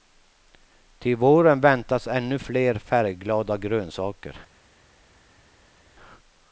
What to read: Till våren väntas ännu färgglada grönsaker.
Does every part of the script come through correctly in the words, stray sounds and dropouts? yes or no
no